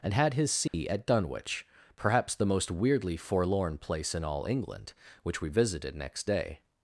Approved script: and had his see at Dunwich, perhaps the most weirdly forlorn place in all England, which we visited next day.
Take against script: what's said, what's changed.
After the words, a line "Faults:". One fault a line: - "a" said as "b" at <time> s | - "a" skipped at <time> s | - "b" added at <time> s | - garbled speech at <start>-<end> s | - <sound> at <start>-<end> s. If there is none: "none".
and had his see at Dunwich, perhaps the most weirdly forlorn place in all England, which we visited next day.
Faults:
- dropout at 0.7-0.7 s